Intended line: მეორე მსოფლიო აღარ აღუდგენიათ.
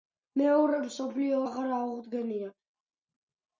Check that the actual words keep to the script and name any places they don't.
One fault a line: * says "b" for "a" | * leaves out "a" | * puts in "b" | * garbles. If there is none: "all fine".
all fine